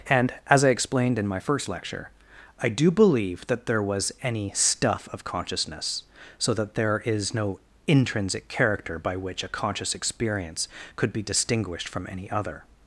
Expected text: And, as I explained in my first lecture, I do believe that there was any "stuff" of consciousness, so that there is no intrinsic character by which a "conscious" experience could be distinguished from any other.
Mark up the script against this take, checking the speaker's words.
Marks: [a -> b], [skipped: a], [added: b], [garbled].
And, as I explained in my first lecture, I do believe that there was any "stuff" of consciousness, so that there is no intrinsic character by which a "conscious" experience could be distinguished from any other.